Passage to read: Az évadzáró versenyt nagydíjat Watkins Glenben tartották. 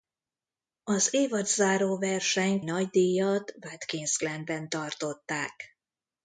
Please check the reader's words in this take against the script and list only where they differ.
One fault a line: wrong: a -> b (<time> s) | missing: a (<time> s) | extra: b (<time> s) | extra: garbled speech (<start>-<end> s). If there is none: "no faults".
no faults